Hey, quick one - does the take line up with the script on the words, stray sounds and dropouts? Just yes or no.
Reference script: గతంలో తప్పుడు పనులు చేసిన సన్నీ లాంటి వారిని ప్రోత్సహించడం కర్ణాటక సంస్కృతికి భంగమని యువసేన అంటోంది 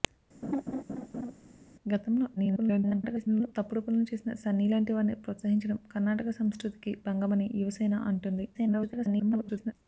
no